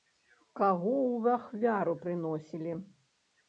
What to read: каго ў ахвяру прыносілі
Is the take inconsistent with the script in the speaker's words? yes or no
no